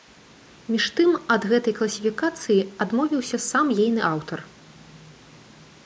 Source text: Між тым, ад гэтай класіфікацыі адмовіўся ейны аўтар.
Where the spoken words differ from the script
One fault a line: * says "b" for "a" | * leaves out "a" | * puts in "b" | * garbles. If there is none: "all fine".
* puts in "сам"